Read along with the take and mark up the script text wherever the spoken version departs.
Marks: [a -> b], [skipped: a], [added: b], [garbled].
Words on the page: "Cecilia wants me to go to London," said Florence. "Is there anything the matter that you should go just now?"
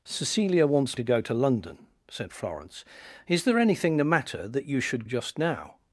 "Cecilia wants [skipped: me] to go to London," said Florence. "Is there anything the matter that you should [skipped: go] just now?"